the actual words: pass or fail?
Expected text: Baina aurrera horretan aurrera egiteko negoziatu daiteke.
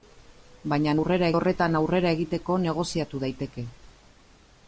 pass